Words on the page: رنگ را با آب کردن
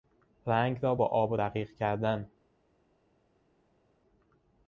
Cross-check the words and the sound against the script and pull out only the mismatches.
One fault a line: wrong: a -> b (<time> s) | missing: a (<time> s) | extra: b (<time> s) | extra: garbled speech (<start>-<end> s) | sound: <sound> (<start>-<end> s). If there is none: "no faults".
extra: رقیق (1.4 s)